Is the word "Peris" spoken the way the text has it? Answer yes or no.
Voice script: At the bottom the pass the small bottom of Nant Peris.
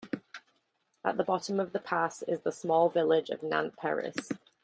yes